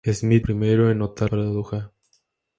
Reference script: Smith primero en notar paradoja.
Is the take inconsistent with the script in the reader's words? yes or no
no